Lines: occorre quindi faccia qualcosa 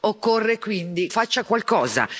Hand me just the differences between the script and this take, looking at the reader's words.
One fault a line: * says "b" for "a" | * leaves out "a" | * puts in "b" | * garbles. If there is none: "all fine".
all fine